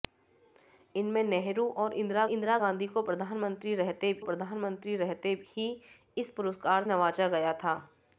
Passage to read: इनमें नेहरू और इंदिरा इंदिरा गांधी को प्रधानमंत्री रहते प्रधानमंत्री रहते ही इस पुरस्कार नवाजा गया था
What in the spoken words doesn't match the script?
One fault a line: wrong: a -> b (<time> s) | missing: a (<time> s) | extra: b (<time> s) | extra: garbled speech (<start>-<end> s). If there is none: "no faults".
no faults